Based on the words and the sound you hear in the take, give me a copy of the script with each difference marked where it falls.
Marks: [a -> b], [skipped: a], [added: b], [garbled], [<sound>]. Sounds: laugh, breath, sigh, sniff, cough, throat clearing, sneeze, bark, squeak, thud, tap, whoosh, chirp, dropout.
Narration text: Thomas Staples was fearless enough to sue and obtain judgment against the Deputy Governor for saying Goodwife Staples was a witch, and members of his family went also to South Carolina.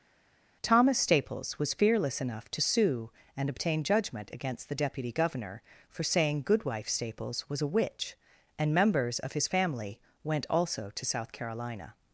Thomas Staples was fearless enough to sue and obtain judgment against the Deputy Governor for saying Goodwife Staples was a witch, and members of his family went also to South Carolina.